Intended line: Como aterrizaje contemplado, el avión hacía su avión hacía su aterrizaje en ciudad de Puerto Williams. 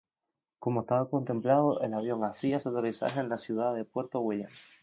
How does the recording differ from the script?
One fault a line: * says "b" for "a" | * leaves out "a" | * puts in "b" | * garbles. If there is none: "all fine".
* says "estaba" for "aterrizaje"
* leaves out "avión hacía su"
* puts in "la"